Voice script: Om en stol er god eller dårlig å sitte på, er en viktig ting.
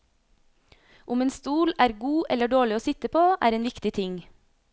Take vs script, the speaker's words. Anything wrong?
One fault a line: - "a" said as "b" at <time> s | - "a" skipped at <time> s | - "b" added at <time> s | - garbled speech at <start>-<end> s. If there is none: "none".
none